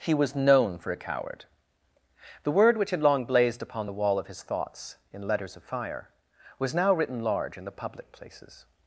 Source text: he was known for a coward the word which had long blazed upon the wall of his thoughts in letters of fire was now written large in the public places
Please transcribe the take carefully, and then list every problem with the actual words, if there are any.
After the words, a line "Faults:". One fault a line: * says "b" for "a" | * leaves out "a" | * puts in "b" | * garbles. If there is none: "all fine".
he was known for a coward the word which had long blazed upon the wall of his thoughts in letters of fire was now written large in the public places
Faults:
all fine